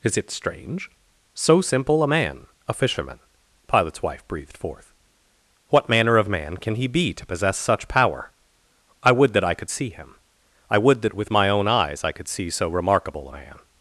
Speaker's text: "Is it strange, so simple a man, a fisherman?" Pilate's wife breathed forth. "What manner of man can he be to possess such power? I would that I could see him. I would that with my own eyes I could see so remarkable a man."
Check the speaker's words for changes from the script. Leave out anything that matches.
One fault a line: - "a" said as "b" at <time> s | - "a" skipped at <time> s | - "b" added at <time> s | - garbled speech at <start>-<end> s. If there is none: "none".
none